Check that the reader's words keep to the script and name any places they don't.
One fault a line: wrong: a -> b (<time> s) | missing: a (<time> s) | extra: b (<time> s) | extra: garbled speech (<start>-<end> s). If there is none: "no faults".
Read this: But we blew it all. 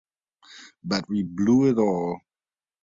no faults